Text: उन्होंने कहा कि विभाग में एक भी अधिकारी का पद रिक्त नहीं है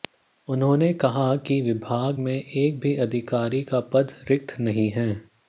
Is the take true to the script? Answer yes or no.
yes